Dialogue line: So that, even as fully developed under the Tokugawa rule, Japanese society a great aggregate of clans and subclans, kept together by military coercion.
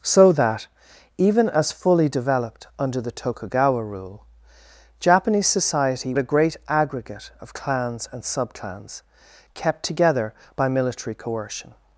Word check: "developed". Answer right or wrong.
right